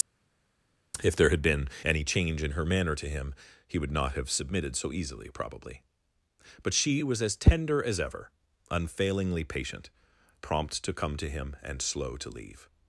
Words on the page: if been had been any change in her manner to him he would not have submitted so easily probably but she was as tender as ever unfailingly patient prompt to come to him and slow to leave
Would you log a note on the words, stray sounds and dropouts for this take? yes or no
yes